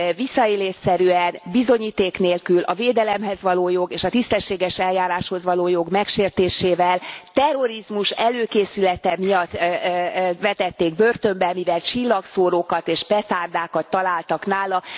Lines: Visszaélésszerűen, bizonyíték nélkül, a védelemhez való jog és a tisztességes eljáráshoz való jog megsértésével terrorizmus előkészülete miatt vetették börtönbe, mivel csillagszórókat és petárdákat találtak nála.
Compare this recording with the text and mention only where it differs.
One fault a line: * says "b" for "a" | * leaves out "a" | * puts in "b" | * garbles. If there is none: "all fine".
all fine